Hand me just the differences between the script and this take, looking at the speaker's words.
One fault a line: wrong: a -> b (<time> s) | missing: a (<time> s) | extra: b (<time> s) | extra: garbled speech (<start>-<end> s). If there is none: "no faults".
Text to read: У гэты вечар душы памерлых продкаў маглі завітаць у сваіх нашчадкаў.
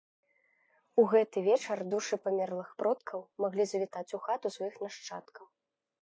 extra: хату (4.3 s)